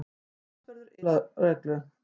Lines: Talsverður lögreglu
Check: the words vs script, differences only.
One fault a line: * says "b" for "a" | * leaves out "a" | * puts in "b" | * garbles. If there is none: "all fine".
all fine